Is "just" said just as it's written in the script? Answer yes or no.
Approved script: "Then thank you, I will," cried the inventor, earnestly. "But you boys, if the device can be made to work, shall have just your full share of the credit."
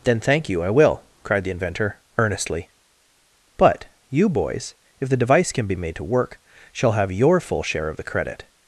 no